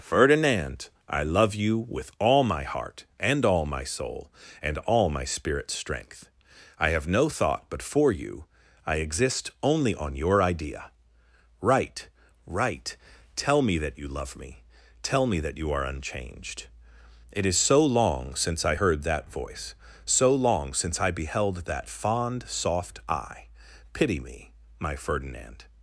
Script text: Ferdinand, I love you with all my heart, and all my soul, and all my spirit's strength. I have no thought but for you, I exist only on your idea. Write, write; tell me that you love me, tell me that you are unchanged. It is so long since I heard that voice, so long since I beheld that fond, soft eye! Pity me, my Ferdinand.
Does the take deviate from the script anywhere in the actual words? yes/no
no